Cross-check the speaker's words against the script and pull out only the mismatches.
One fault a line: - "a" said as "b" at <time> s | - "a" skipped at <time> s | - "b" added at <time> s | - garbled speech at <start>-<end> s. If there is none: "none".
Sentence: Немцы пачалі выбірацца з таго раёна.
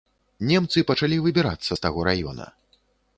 none